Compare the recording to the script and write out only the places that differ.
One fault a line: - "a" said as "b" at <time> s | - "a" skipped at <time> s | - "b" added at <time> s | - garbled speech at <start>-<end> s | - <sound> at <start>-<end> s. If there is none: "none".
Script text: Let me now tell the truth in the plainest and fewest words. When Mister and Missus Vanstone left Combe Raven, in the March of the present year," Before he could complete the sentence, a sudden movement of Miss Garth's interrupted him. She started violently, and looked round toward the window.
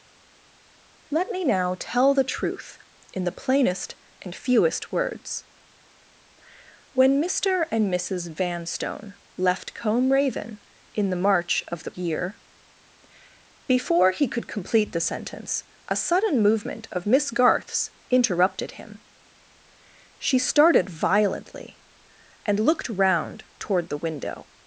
- "present" skipped at 11.9 s